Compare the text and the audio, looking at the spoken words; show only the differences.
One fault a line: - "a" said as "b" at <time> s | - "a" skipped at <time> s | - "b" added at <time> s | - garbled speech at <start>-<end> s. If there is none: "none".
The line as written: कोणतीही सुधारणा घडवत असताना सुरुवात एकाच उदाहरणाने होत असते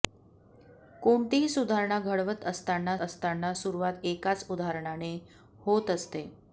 - "असताना" added at 3.0 s